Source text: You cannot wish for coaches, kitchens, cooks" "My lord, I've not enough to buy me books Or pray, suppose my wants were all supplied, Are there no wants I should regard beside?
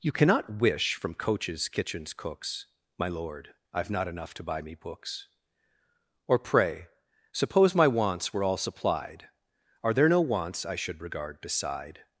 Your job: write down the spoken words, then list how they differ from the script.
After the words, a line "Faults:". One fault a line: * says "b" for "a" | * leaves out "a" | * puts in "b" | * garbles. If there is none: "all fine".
You cannot wish from coaches, kitchens, cooks" "My lord, I've not enough to buy me books Or pray, suppose my wants were all supplied, Are there no wants I should regard beside?
Faults:
* says "from" for "for"